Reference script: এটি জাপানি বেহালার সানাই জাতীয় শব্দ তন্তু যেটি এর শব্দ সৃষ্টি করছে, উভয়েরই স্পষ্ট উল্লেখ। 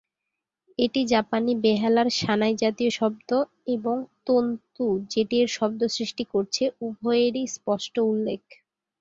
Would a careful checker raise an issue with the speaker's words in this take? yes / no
yes